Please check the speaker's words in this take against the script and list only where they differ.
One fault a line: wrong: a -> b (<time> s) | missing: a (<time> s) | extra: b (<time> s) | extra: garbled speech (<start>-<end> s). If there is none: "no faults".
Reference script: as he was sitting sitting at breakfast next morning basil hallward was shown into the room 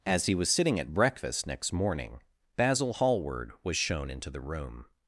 missing: sitting (0.8 s)